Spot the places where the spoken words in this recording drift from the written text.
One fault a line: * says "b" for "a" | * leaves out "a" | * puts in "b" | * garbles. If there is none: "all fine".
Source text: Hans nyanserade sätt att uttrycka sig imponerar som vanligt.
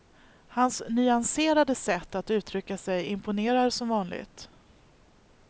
all fine